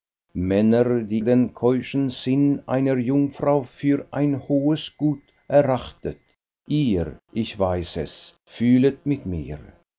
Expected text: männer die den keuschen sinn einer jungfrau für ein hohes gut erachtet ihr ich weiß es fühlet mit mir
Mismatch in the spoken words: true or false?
false